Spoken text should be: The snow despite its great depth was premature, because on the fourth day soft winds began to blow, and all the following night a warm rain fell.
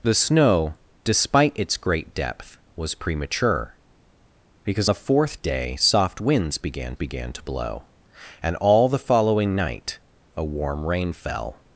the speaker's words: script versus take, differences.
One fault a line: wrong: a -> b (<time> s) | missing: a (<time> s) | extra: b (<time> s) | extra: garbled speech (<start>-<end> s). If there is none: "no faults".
missing: on (4.9 s)
extra: began (6.9 s)